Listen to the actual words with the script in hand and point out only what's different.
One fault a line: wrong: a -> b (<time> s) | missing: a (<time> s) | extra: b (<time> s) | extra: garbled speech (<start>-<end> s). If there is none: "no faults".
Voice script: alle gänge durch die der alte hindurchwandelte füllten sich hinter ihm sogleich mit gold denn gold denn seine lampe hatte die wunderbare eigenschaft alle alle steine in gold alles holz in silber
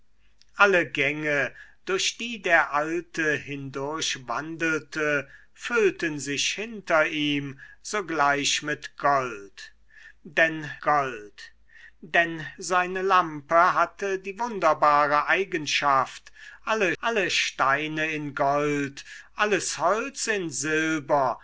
no faults